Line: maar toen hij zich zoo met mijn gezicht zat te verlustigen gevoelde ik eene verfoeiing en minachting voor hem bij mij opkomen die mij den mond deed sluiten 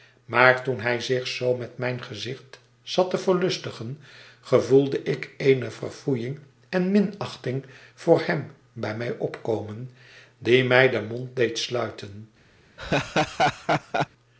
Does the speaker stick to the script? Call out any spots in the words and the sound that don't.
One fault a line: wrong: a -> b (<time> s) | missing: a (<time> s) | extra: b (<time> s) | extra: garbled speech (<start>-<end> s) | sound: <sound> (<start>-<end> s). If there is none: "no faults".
sound: laugh (12.8-14.1 s)